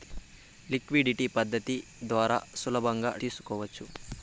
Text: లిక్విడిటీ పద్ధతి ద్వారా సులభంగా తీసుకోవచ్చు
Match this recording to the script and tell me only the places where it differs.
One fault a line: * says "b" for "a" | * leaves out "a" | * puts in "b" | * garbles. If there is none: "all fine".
all fine